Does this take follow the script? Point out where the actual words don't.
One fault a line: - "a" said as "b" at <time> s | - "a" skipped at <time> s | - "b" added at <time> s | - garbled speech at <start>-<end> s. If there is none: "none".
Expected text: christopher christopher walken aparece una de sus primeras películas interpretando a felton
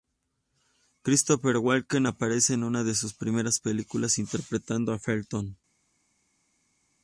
- "christopher" skipped at 1.6 s
- "en" added at 2.5 s